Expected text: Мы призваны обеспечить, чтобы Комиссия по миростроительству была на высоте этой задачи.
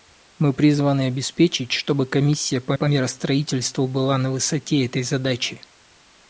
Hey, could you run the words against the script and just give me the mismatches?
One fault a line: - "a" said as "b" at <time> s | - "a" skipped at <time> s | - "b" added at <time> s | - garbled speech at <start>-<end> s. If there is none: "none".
- "по" added at 2.7 s